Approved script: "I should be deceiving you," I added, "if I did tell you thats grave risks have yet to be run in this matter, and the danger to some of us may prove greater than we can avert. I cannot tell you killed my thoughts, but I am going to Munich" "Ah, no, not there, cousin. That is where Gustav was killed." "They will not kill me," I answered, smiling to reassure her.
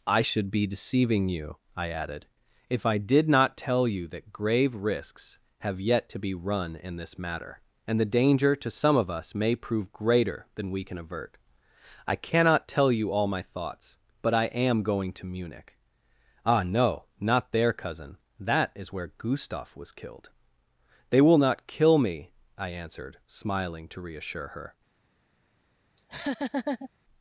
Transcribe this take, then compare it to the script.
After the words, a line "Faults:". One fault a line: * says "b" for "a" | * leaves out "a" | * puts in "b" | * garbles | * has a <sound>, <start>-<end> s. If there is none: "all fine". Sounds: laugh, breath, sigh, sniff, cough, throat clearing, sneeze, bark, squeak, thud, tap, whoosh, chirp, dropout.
"I should be deceiving you," I added, "if I did not tell you that grave risks have yet to be run in this matter, and the danger to some of us may prove greater than we can avert. I cannot tell you all my thoughts, but I am going to Munich" "Ah, no, not there, cousin. That is where Gustav was killed." "They will not kill me," I answered, smiling to reassure her.
Faults:
* puts in "not"
* says "that" for "thats"
* says "all" for "killed"
* has a laugh, 26.0-26.9 s